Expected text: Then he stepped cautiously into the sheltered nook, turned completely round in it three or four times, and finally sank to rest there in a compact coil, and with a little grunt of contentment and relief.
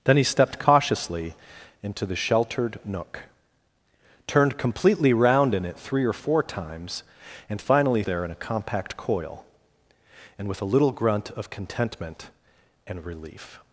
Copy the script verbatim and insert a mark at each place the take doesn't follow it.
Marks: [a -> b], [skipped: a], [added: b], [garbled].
Then he stepped cautiously into the sheltered nook, turned completely round in it three or four times, and finally [skipped: sank to rest] there in a compact coil, and with a little grunt of contentment and relief.